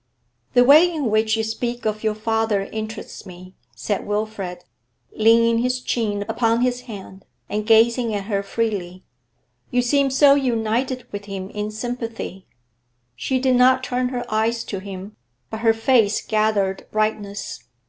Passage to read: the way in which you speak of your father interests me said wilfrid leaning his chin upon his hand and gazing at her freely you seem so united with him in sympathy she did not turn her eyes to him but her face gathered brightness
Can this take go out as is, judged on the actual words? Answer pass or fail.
pass